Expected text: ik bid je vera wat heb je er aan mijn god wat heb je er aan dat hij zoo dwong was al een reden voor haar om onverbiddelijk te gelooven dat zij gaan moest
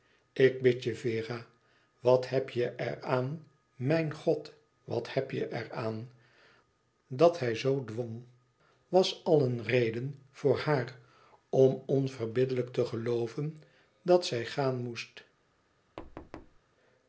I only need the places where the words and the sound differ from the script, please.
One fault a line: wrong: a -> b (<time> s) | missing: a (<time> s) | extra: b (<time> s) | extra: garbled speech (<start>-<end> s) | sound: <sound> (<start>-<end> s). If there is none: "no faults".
sound: thud (16.0-16.6 s)